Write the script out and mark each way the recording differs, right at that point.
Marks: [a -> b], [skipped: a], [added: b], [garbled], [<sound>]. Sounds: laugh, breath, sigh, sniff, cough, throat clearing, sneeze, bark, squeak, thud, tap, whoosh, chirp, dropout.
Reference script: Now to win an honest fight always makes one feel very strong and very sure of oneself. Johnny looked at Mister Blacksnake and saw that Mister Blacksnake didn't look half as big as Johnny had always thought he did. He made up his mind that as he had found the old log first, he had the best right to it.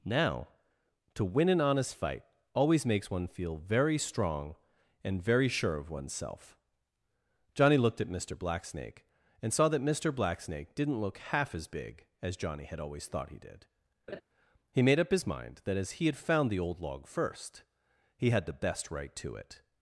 Now to win an honest fight always makes one feel very strong and very sure of oneself. Johnny looked at Mister Blacksnake and saw that Mister Blacksnake didn't look half as big as Johnny had always thought he did. [laugh] He made up his mind that as he had found the old log first, he had the best right to it.